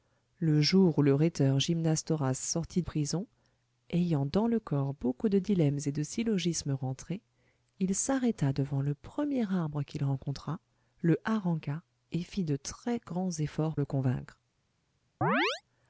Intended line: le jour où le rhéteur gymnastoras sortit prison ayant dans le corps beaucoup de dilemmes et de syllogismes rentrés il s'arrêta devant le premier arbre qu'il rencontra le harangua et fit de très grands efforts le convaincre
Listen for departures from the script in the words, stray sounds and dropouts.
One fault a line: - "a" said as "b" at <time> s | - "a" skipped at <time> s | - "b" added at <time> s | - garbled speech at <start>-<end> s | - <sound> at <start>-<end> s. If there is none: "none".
- chirp at 15.2-15.6 s